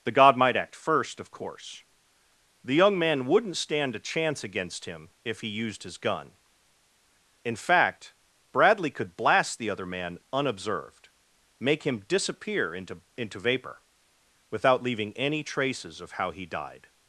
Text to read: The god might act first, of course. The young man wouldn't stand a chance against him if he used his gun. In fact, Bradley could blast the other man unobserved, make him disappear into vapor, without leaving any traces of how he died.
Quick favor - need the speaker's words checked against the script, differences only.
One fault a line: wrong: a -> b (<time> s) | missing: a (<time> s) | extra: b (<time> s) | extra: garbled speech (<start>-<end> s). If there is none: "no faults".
extra: into (13.2 s)